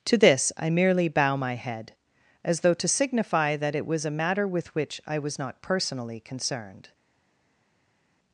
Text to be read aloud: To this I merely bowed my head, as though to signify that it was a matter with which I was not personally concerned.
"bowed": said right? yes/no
no